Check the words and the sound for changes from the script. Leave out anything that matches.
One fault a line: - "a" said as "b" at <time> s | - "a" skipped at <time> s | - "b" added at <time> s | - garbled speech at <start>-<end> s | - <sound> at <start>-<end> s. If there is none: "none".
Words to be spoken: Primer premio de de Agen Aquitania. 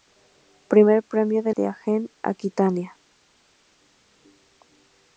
none